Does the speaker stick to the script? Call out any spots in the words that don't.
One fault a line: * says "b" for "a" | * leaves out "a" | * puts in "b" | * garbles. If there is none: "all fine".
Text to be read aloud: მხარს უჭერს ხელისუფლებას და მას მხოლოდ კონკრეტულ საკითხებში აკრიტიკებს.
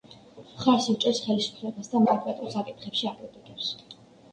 * leaves out "მას მხოლოდ"